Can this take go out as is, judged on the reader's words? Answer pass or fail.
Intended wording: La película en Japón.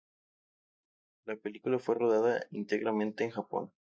fail